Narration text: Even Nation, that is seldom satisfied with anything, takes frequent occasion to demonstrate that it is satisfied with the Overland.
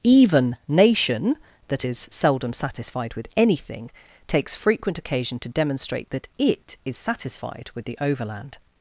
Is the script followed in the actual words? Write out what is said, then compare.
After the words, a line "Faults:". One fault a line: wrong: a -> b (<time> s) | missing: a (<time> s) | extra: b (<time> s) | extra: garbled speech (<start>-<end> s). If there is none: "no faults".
Even Nation, that is seldom satisfied with anything, takes frequent occasion to demonstrate that it is satisfied with the Overland.
Faults:
no faults